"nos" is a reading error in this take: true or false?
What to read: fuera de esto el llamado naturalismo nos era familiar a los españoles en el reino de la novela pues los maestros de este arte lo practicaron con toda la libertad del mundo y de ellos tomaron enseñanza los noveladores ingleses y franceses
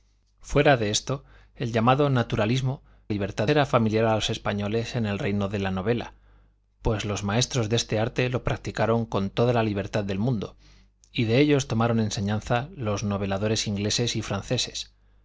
true